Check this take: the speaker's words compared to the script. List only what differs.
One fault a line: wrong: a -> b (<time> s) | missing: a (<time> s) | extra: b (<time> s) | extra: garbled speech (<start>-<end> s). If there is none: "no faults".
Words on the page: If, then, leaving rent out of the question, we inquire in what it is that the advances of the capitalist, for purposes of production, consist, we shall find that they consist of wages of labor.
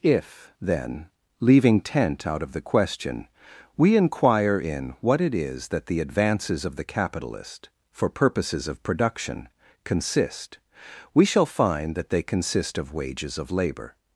wrong: rent -> tent (1.8 s)